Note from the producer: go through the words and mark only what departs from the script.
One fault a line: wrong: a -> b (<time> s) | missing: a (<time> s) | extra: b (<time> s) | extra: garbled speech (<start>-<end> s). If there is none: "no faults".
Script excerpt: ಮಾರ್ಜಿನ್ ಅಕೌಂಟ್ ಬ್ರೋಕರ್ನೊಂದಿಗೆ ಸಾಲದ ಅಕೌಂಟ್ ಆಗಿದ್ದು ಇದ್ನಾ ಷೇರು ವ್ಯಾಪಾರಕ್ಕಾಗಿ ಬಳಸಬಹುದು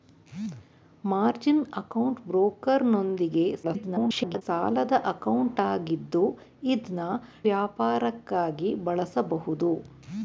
extra: garbled speech (3.6-4.4 s)
missing: ಷೇರು (7.1 s)